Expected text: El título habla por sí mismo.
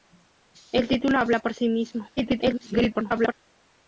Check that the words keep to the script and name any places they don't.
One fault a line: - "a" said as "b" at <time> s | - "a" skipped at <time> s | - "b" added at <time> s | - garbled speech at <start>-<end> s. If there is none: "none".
- garbled speech at 2.2-3.3 s